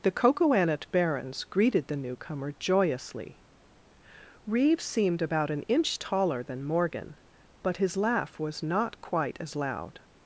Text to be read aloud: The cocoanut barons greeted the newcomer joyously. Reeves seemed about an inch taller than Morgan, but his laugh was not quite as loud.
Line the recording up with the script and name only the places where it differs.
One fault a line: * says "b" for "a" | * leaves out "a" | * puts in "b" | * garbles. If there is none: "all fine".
all fine